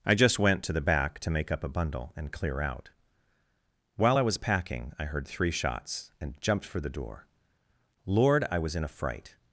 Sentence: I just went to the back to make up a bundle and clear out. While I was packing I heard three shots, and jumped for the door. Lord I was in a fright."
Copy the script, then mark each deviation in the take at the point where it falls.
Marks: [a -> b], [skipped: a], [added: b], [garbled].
I just went to the back to make up a bundle and clear out. While I was packing I heard three shots, and jumped for the door. Lord I was in a fright."